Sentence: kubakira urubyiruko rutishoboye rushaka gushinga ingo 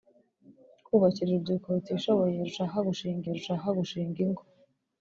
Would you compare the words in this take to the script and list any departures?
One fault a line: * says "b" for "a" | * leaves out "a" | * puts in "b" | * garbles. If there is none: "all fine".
* puts in "rushaka gushinga"